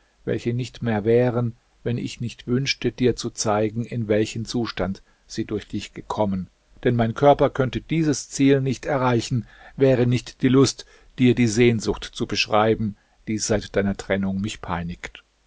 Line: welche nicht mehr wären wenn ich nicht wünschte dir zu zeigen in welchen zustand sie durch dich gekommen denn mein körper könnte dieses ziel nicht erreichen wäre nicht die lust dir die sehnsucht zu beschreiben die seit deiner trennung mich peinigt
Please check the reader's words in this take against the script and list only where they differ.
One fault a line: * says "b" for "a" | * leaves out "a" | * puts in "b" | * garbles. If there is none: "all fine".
all fine